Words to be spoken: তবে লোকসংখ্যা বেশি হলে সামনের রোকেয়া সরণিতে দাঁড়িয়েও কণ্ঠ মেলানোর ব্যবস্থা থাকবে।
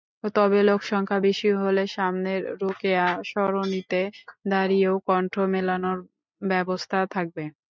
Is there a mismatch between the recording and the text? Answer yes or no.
no